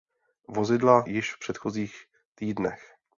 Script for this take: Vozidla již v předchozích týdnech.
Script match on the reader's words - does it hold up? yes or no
yes